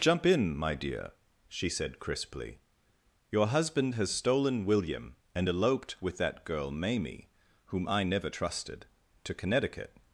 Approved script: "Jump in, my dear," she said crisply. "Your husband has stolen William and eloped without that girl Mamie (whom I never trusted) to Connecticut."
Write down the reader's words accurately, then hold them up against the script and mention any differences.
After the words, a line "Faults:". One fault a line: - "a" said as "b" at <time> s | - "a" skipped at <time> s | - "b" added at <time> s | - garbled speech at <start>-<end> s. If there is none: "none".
"Jump in, my dear," she said crisply. "Your husband has stolen William and eloped with that girl Mamie (whom I never trusted) to Connecticut."
Faults:
- "without" said as "with" at 6.0 s